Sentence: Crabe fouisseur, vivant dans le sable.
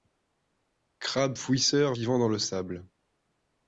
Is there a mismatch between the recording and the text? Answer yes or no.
no